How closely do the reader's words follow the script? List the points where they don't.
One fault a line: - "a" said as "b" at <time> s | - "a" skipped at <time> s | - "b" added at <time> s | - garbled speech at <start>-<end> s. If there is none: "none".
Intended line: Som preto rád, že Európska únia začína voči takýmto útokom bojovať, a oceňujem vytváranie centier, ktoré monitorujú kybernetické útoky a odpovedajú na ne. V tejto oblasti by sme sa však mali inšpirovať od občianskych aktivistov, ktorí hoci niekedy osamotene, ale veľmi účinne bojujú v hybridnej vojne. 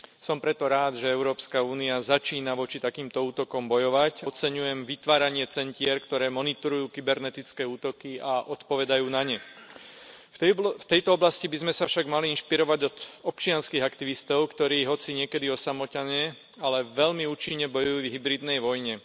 - "a" skipped at 4.3 s